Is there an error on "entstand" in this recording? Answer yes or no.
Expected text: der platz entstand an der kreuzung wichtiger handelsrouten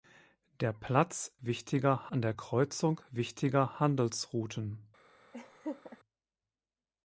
yes